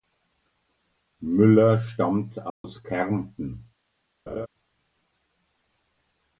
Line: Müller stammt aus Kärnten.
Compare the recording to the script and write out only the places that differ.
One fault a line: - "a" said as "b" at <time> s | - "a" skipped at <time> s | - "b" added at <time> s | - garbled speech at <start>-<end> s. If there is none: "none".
none